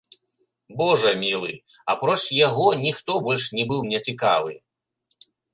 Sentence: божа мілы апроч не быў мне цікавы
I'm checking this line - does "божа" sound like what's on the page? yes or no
yes